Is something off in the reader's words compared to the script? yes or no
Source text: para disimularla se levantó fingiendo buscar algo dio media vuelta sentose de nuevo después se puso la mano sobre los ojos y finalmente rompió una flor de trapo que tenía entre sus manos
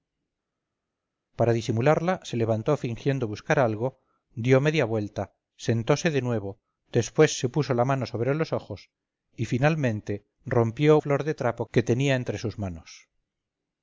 yes